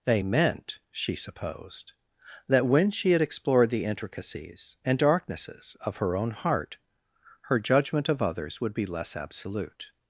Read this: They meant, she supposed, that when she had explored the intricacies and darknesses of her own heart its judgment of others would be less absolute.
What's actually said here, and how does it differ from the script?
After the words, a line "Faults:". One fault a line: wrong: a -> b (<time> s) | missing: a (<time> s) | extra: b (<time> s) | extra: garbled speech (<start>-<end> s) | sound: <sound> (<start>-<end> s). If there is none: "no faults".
They meant, she supposed, that when she had explored the intricacies and darknesses of her own heart her judgment of others would be less absolute.
Faults:
wrong: its -> her (7.4 s)